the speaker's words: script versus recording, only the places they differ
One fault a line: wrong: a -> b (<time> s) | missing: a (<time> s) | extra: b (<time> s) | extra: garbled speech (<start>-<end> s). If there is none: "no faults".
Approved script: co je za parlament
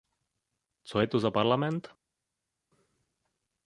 extra: to (1.1 s)